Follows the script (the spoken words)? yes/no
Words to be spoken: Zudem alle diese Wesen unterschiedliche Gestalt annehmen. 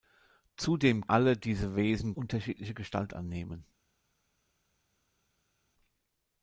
yes